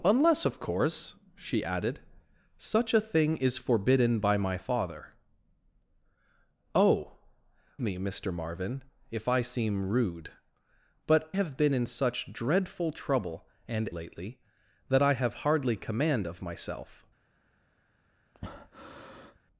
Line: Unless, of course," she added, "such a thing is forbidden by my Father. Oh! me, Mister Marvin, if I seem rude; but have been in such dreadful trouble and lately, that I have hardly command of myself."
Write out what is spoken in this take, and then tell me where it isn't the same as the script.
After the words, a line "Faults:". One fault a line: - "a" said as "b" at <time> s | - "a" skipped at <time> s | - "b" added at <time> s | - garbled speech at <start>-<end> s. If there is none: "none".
Unless, of course," she added, "such a thing is forbidden by my Father. Oh! me, Mister Marvin, if I seem rude; but have been in such dreadful trouble and lately, that I have hardly command of myself."
Faults:
none